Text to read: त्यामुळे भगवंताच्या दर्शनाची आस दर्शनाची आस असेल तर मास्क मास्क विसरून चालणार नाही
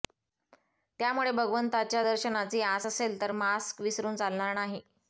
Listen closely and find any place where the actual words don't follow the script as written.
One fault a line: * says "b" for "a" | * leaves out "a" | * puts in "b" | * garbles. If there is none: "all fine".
* leaves out "दर्शनाची आस"
* leaves out "मास्क"